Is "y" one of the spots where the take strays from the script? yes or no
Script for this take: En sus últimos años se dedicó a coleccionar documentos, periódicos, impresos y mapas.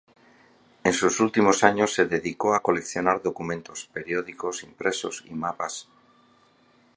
no